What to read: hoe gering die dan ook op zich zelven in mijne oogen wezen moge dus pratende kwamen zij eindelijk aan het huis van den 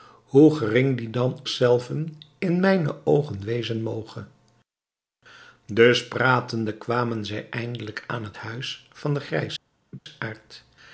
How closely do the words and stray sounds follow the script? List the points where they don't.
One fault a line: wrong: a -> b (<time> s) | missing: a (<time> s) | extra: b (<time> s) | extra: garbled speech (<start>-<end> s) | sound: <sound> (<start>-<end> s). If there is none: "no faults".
missing: ook op zich (1.4 s)
sound: laugh (9.9-10.0 s)